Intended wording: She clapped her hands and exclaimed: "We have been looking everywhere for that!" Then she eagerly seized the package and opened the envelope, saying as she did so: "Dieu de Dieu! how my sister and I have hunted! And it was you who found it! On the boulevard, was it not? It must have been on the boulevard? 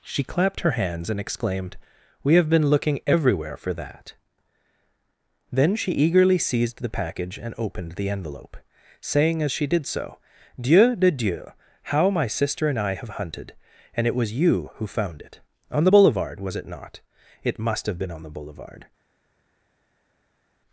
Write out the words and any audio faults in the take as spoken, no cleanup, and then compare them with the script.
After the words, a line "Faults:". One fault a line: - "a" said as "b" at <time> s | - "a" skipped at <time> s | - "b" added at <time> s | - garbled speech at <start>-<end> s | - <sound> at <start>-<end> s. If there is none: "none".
She clapped her hands and exclaimed: "We have been looking everywhere for that!" Then she eagerly seized the package and opened the envelope, saying as she did so: "Dieu de Dieu! how my sister and I have hunted! And it was you who found it! On the boulevard, was it not? It must have been on the boulevard?
Faults:
none